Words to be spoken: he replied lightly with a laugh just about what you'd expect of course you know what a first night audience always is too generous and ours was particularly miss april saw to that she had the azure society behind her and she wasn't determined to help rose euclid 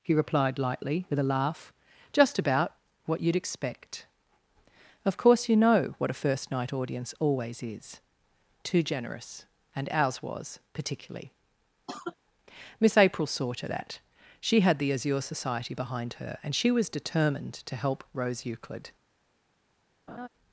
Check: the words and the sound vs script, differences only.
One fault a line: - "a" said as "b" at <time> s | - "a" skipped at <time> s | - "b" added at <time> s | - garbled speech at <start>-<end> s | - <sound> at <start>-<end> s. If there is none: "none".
- cough at 11.9-12.2 s
- "wasn't" said as "was" at 16.7 s
- laugh at 20.1-20.3 s